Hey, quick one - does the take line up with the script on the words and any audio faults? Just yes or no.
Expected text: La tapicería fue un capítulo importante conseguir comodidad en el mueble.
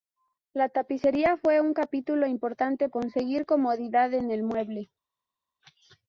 yes